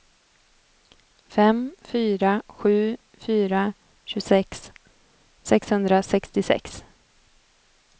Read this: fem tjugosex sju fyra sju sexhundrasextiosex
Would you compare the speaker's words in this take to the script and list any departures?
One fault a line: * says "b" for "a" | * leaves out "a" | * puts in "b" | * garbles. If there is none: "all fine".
* says "fyra" for "tjugosex"
* says "tjugosex" for "sju"